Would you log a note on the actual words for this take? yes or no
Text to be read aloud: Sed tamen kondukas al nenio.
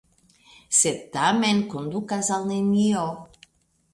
no